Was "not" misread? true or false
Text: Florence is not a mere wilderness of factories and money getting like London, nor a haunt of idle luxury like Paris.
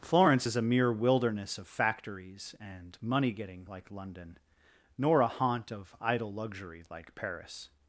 true